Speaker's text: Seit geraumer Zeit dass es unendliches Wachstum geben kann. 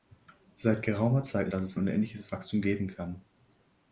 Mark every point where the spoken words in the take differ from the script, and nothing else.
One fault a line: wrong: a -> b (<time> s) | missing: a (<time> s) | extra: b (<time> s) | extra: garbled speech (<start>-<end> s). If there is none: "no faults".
no faults